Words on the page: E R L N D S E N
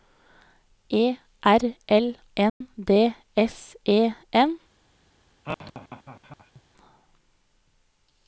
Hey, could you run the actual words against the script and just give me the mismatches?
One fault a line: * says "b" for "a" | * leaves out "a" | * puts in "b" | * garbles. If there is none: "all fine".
all fine